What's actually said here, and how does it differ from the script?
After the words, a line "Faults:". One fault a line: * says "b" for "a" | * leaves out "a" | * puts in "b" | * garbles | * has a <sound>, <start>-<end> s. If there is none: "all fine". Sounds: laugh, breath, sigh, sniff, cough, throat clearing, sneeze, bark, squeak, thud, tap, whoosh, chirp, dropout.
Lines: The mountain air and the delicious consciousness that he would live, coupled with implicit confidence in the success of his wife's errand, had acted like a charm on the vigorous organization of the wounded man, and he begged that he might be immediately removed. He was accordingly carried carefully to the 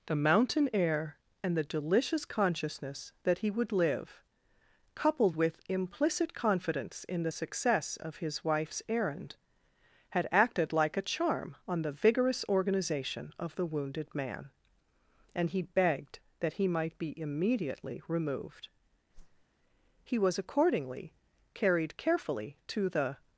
The mountain air and the delicious consciousness that he would live, coupled with implicit confidence in the success of his wife's errand, had acted like a charm on the vigorous organization of the wounded man, and he begged that he might be immediately removed. He was accordingly carried carefully to the
Faults:
* has a whoosh, 19.1-19.5 s